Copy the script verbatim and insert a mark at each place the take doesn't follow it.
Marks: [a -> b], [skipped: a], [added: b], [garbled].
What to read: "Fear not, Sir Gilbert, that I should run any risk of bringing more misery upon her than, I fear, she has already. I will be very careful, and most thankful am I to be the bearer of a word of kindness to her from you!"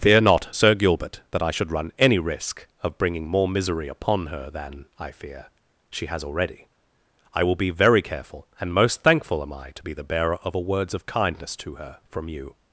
"Fear not, Sir Gilbert, that I should run any risk of bringing more misery upon her than, I fear, she has already. I will be very careful, and most thankful am I to be the bearer of a [word -> words] of kindness to her from you!"